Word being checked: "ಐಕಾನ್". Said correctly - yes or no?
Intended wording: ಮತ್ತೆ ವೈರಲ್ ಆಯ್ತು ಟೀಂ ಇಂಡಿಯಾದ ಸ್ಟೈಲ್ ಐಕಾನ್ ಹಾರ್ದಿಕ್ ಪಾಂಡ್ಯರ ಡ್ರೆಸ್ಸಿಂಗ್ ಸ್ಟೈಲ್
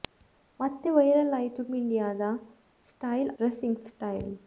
no